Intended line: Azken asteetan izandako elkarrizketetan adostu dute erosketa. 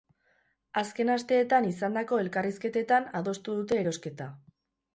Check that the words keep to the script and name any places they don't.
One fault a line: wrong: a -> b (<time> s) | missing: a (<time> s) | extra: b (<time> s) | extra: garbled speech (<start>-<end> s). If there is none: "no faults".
no faults